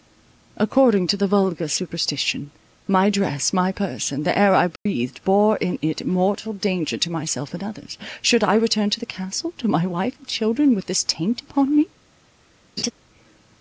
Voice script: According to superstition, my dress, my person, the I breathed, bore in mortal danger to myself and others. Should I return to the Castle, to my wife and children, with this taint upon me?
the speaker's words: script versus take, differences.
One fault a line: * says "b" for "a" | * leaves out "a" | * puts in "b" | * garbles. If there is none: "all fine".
* puts in "the vulgar"
* puts in "air"
* puts in "it"